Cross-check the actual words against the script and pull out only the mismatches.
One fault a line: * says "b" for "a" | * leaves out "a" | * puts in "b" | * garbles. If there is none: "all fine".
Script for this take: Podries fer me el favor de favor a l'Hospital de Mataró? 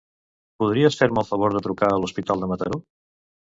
* says "trucar" for "favor"